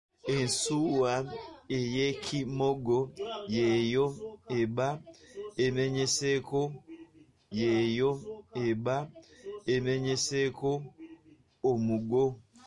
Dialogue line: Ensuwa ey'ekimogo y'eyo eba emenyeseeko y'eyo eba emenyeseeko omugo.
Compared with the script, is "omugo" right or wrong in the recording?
right